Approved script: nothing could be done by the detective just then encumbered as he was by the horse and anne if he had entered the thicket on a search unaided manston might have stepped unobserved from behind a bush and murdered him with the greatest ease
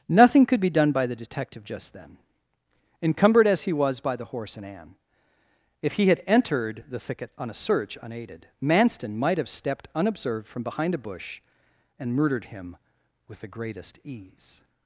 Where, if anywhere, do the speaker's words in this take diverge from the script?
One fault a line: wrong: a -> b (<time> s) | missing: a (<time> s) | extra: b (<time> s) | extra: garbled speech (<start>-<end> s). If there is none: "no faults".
no faults